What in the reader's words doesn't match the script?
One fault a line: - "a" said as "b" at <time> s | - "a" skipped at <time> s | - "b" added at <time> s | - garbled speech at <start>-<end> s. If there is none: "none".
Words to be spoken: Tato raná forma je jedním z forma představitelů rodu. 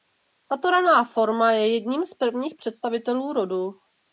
- "forma" said as "prvních" at 2.1 s